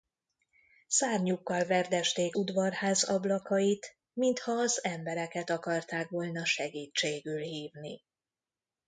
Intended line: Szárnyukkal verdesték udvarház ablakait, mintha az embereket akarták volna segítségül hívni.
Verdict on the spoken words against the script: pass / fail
pass